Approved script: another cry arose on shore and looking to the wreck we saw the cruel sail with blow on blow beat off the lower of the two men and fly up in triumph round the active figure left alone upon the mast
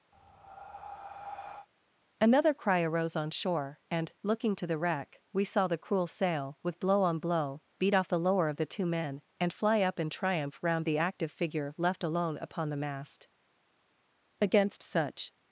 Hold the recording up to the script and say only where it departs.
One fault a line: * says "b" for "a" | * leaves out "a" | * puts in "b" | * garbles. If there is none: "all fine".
* puts in "against such"